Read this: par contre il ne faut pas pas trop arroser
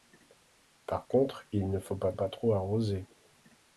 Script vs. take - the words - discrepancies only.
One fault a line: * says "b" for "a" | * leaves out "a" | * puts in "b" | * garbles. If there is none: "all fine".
all fine